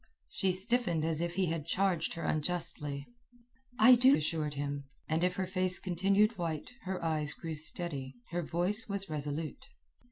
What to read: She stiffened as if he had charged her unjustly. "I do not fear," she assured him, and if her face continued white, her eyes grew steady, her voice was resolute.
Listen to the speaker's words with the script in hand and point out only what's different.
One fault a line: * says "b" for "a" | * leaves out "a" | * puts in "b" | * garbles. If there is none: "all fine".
* leaves out "not fear she"